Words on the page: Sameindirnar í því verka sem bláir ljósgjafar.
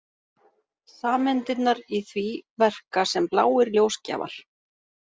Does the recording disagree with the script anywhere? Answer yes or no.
no